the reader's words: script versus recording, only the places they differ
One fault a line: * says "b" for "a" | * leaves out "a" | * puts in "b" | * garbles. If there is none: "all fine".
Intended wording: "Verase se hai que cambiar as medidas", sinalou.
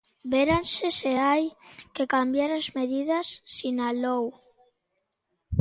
all fine